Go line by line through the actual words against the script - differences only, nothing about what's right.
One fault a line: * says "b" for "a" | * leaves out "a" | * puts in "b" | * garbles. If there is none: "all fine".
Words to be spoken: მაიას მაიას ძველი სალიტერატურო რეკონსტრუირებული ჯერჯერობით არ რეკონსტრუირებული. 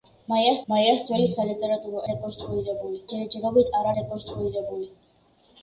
all fine